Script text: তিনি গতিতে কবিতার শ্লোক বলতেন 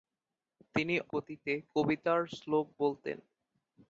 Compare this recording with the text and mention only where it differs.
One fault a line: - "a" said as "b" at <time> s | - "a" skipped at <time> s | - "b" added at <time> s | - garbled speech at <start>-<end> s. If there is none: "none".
none